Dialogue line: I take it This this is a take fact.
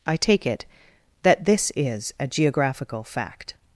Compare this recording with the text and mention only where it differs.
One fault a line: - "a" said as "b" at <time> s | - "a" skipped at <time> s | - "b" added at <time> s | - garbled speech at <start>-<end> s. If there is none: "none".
- "This" said as "That" at 1.2 s
- "take" said as "geographical" at 2.3 s